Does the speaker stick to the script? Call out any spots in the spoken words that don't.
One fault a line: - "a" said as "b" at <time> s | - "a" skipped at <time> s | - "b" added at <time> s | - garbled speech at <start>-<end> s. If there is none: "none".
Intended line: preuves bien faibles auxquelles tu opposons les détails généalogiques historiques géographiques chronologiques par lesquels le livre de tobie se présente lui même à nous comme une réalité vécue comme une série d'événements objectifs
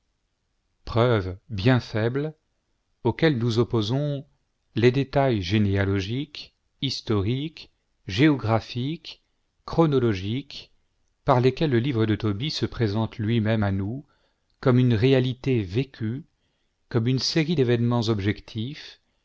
- "tu" said as "nous" at 3.4 s